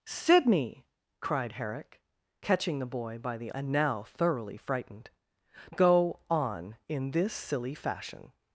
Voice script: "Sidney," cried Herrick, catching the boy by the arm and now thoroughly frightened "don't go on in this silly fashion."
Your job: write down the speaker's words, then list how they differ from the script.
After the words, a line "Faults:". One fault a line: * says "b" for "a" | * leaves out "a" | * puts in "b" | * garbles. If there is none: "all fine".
"Sidney," cried Herrick, catching the boy by the and now thoroughly frightened "go on in this silly fashion."
Faults:
* leaves out "arm"
* leaves out "don't"